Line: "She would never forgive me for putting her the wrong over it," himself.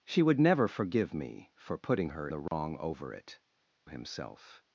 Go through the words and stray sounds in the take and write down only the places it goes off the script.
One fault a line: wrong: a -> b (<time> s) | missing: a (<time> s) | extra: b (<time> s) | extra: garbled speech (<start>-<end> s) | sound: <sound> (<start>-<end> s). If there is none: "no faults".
sound: dropout (2.5-2.5 s)